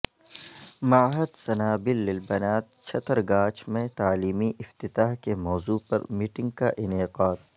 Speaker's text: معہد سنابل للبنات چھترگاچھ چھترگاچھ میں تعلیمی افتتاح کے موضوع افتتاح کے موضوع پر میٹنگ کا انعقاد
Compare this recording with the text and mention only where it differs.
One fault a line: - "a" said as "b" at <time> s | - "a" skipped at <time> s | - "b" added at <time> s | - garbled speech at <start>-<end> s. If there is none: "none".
- "چھترگاچھ" skipped at 3.6 s
- "افتتاح کے موضوع" skipped at 5.8 s